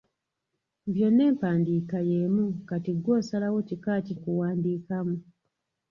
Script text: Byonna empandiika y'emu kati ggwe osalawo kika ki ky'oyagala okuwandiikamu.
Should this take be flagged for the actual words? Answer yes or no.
yes